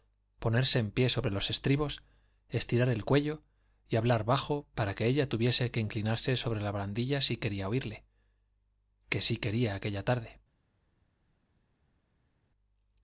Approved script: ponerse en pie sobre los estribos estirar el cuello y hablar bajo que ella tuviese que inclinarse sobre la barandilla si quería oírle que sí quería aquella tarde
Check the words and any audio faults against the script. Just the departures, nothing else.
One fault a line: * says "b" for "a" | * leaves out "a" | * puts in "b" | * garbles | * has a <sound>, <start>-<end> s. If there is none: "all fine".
* puts in "para"